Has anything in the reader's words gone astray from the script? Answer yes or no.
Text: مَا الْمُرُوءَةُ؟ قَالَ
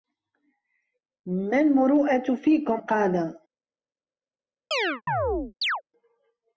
yes